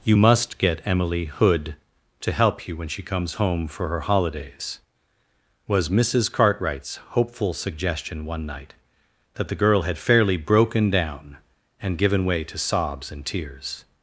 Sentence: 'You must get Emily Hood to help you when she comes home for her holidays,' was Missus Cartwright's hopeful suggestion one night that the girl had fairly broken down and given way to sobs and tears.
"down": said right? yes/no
yes